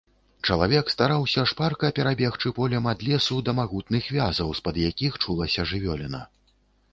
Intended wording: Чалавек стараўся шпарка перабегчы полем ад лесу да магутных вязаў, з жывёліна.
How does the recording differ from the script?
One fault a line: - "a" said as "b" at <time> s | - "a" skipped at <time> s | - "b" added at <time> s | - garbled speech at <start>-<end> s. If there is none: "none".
- "пад якіх чулася" added at 4.7 s